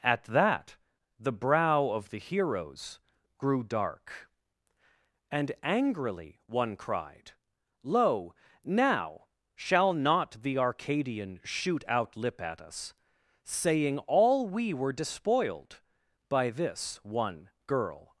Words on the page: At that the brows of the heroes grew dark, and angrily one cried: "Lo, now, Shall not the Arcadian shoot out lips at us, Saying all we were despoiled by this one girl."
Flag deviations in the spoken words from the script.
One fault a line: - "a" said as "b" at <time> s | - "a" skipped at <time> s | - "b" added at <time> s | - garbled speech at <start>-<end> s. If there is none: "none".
- "brows" said as "brow" at 1.3 s
- "lips" said as "lip" at 12.2 s